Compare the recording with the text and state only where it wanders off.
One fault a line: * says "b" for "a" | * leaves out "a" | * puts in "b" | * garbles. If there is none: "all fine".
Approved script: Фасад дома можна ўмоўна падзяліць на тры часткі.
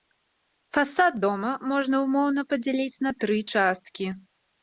all fine